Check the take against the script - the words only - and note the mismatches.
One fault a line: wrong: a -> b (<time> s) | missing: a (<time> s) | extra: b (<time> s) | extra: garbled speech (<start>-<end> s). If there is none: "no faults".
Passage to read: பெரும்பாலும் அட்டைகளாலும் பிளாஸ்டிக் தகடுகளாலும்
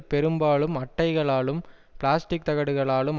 no faults